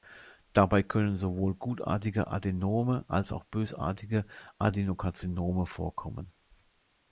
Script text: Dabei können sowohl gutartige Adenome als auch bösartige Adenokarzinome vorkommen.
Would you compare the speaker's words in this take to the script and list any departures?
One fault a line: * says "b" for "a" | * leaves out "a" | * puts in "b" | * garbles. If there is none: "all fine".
all fine